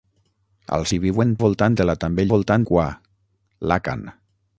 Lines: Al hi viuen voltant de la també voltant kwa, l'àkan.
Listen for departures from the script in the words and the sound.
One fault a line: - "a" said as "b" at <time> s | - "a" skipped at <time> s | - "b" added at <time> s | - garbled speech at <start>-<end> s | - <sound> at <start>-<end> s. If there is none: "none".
none